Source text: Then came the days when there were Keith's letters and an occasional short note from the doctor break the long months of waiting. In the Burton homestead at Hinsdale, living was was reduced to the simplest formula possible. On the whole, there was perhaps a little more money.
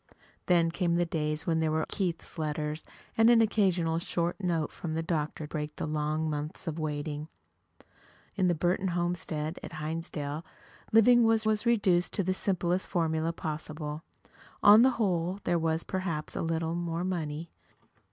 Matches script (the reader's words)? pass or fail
pass